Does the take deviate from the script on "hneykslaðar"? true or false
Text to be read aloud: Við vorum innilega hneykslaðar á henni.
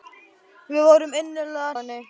true